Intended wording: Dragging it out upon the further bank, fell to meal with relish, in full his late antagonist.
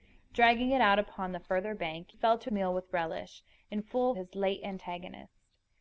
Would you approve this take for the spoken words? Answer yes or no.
yes